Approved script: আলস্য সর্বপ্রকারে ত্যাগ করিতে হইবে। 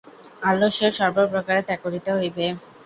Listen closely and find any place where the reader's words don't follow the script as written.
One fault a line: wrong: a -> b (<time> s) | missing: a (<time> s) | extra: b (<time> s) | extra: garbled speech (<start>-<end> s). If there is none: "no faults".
no faults